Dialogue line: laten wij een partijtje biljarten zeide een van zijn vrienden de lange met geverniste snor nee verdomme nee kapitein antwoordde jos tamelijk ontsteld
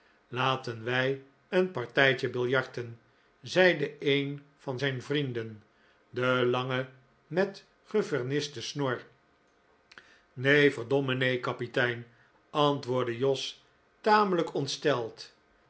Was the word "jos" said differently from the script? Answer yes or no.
no